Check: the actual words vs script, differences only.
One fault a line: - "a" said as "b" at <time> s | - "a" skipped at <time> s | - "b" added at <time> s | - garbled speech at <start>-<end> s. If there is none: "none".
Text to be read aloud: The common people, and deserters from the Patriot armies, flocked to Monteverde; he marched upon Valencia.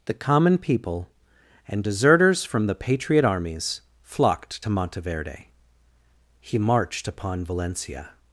none